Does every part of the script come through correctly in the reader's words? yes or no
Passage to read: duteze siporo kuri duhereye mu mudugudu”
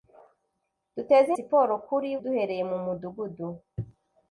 yes